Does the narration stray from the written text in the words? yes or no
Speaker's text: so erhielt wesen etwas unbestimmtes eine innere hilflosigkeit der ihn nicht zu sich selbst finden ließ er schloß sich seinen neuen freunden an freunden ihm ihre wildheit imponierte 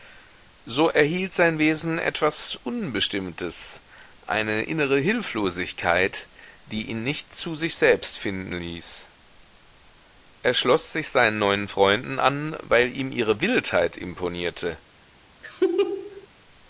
yes